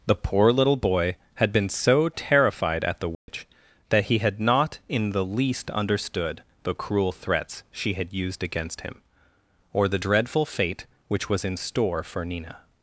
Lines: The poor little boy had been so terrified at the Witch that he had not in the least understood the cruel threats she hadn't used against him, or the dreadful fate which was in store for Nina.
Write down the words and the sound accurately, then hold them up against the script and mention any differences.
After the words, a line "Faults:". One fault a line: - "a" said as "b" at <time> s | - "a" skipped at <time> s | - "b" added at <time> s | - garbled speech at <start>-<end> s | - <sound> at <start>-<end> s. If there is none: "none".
The poor little boy had been so terrified at the Witch that he had not in the least understood the cruel threats she had used against him, or the dreadful fate which was in store for Nina.
Faults:
- dropout at 3.1-3.3 s
- "hadn't" said as "had" at 7.9 s